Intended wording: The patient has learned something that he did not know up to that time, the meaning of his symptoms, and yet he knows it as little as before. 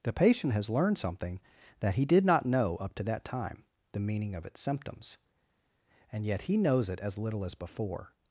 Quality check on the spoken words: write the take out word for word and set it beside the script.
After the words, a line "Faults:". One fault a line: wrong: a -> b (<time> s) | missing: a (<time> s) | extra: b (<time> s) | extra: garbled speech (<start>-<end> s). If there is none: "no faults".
The patient has learned something that he did not know up to that time, the meaning of its symptoms, and yet he knows it as little as before.
Faults:
wrong: his -> its (4.5 s)